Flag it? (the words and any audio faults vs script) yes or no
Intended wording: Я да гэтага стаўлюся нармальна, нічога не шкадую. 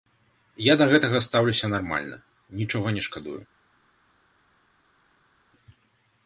no